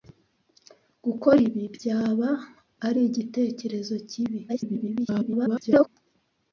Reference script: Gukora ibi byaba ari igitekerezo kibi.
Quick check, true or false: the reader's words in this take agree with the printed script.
false